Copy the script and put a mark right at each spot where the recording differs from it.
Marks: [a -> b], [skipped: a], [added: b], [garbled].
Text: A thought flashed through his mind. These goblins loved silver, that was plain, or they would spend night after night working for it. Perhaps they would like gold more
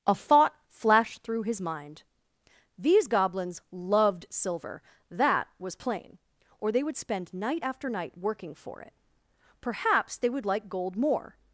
A thought flashed through his mind. These goblins loved silver, that was plain, or they would spend night after night working for it. Perhaps they would like gold more